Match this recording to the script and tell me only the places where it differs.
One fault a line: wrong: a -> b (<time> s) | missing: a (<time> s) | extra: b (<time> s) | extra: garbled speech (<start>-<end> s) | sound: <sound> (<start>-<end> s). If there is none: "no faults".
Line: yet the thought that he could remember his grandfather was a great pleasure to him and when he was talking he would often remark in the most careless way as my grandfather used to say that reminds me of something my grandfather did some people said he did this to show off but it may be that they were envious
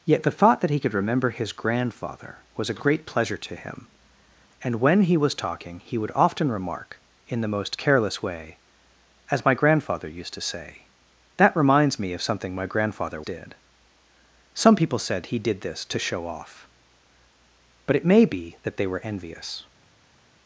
no faults